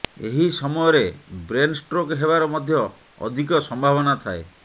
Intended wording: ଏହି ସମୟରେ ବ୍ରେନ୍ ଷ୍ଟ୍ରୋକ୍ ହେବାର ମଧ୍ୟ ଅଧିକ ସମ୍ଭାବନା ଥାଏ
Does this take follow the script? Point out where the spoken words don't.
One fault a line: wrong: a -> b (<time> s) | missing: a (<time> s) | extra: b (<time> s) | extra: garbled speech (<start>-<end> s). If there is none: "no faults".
no faults